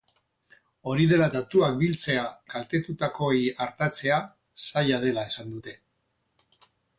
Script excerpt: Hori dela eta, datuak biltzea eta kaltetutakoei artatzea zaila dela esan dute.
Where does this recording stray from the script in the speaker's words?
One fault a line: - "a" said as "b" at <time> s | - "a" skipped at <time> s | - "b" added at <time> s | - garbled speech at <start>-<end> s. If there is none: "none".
- "eta" skipped at 1.3 s
- "eta" skipped at 2.3 s